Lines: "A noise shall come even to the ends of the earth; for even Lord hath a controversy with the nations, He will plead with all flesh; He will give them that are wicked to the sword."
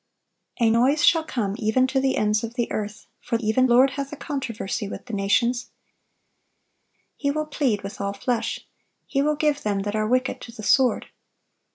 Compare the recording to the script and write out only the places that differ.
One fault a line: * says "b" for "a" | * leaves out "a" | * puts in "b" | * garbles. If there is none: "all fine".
all fine